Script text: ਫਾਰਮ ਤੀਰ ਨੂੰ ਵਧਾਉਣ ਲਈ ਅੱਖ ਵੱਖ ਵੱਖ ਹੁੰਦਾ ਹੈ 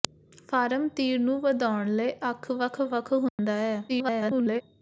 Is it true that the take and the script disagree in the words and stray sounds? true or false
true